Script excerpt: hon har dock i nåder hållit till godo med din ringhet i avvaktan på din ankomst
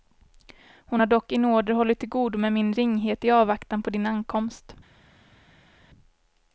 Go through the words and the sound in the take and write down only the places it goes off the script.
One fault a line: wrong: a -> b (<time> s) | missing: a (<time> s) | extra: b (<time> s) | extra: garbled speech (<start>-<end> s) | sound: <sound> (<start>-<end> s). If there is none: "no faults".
wrong: din -> min (2.5 s)